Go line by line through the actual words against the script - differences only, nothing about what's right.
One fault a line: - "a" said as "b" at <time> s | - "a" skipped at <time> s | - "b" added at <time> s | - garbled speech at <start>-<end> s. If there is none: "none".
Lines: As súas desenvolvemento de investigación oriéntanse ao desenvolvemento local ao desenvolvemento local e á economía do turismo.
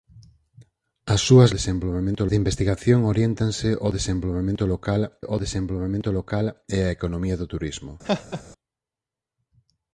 none